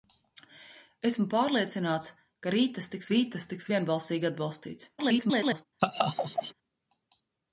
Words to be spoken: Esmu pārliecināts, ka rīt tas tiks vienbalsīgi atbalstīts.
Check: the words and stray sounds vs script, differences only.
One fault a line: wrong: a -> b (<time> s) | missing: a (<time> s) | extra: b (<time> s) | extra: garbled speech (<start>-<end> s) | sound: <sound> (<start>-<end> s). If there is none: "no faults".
extra: rīt tas tiks (3.1 s)
extra: garbled speech (5.0-5.7 s)
sound: laugh (5.8-6.5 s)